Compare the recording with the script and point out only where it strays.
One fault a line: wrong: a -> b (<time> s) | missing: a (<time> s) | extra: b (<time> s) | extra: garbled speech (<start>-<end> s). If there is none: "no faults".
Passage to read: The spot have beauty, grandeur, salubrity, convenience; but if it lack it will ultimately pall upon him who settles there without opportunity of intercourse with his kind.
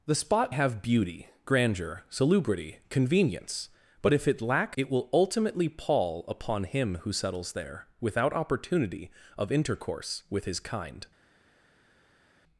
no faults